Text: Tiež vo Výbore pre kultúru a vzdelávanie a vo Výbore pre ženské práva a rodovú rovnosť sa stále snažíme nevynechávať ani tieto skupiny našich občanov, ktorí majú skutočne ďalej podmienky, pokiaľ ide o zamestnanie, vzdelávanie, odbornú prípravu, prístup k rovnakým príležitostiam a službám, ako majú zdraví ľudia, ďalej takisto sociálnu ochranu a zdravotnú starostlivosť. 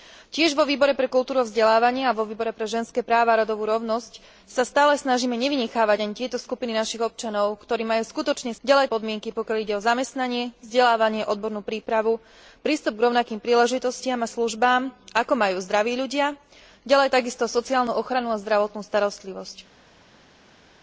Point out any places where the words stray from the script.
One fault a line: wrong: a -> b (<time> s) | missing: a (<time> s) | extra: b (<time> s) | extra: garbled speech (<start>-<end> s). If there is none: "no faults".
no faults